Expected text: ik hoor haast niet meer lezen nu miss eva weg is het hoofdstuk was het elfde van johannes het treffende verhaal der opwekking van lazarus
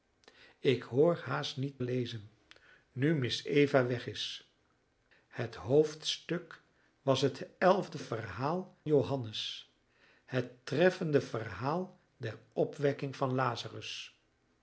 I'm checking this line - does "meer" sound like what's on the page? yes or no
no